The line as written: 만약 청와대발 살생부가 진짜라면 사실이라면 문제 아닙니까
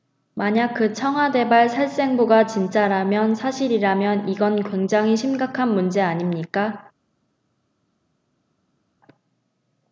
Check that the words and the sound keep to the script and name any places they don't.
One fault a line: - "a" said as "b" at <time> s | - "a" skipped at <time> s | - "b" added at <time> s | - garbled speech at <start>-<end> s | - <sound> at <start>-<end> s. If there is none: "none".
- "그" added at 0.7 s
- "이건 굉장히 심각한" added at 4.3 s